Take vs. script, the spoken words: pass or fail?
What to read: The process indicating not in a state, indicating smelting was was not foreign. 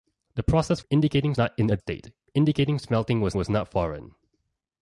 pass